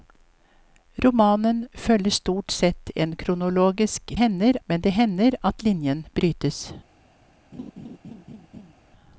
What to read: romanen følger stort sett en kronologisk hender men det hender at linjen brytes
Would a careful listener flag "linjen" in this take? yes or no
no